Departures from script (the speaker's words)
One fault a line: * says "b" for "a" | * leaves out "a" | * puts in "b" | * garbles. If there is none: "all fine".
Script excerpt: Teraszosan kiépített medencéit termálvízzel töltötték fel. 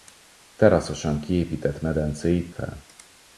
* leaves out "termálvízzel töltötték"